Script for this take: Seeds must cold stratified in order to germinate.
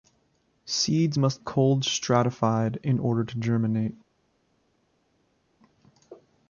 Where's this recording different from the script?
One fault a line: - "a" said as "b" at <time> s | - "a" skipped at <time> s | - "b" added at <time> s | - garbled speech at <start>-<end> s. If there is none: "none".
none